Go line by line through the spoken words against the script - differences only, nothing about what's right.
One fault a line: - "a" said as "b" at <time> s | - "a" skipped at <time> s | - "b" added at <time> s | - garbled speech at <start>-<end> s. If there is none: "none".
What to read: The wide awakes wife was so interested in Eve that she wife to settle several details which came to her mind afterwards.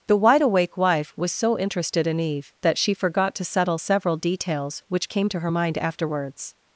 - "awakes" said as "awake" at 0.4 s
- "wife" said as "forgot" at 2.9 s